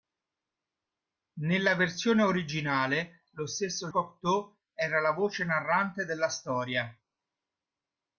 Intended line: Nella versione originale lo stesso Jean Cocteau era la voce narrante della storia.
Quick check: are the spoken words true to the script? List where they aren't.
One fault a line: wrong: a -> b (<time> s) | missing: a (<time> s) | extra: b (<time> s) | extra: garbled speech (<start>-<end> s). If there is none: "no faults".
missing: Jean (3.9 s)